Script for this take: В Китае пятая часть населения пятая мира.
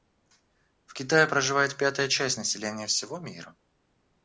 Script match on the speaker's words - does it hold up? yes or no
no